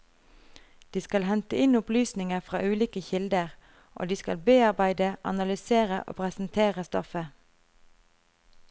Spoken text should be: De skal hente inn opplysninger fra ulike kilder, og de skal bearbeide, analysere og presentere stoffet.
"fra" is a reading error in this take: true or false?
false